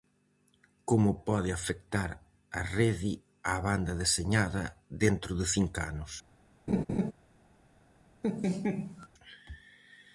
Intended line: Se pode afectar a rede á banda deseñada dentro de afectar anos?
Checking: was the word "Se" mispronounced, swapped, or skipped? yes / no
yes